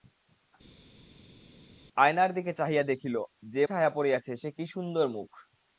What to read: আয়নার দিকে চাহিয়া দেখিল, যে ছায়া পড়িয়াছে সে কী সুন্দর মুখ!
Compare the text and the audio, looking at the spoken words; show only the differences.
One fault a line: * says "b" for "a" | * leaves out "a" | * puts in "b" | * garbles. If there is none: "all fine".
all fine